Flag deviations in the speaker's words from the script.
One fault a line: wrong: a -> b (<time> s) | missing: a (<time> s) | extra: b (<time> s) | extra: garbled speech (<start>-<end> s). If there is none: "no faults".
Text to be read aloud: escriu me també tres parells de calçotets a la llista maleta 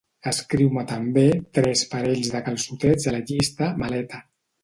no faults